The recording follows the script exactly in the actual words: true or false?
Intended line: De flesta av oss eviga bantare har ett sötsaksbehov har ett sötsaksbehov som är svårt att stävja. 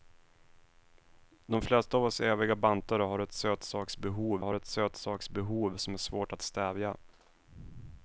true